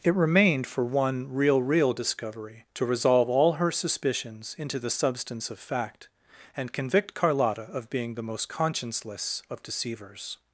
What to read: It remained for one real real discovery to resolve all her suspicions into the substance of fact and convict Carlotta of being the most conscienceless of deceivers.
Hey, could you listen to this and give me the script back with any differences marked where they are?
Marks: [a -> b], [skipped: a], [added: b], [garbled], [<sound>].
It remained for one real real discovery to resolve all her suspicions into the substance of fact and convict Carlotta of being the most conscienceless of deceivers.